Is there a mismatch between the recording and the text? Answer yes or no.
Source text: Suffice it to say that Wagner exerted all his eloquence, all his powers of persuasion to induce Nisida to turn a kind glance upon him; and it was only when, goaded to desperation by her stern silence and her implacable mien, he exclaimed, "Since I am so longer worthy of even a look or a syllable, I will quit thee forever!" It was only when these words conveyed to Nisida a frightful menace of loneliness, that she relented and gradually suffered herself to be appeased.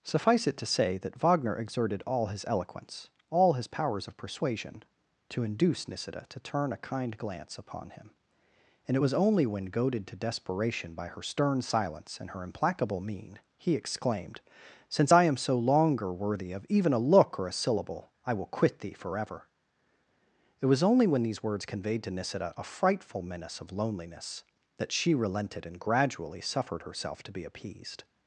no